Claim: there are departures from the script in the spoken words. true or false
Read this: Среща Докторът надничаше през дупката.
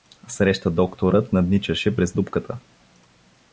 false